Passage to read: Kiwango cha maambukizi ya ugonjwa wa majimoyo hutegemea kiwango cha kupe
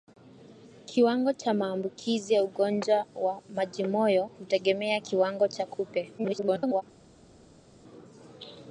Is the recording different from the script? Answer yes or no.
yes